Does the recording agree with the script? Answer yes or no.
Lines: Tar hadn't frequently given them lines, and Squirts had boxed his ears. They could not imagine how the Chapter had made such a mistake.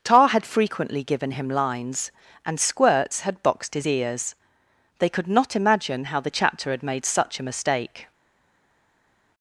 no